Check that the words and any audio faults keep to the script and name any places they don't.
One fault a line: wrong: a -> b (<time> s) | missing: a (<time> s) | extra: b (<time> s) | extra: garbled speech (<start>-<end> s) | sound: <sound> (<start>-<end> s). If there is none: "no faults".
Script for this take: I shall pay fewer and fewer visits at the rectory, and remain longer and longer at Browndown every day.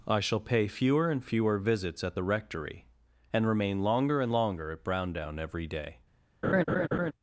sound: laugh (6.4-7.1 s)